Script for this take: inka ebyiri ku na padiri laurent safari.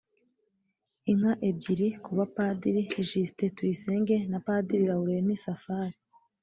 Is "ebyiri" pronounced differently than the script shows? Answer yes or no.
no